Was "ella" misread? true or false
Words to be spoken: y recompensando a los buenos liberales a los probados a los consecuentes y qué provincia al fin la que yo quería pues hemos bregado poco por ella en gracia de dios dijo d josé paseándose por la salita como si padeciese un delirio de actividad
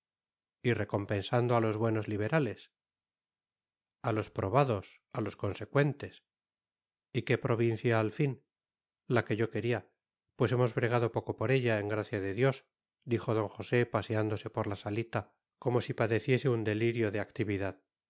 false